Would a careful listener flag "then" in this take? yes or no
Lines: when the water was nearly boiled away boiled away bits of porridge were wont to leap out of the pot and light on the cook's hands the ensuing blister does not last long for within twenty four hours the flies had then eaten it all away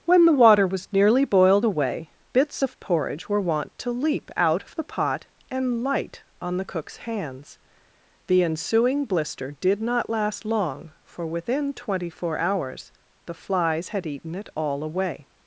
yes